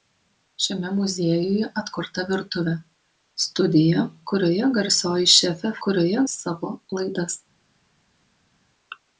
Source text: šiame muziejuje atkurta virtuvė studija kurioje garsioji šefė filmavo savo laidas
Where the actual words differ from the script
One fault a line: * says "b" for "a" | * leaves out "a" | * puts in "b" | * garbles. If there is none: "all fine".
* says "kurioje" for "filmavo"